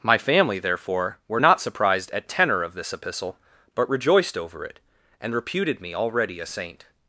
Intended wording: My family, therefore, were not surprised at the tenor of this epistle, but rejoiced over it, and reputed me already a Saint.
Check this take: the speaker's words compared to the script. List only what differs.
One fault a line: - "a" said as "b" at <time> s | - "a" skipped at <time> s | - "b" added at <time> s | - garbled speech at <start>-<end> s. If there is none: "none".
- "the" skipped at 2.3 s